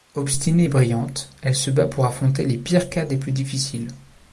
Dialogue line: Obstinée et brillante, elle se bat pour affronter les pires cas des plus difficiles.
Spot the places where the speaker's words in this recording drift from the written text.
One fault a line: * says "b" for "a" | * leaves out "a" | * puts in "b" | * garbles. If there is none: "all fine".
all fine